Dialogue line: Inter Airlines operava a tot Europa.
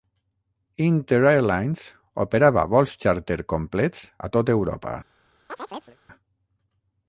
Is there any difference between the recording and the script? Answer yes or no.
yes